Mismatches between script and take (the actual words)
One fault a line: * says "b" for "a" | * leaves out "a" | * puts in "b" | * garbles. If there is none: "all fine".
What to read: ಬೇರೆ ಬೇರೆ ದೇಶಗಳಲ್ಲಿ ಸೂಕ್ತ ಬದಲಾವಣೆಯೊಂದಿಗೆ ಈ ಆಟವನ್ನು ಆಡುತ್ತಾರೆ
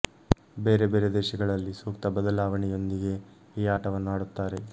all fine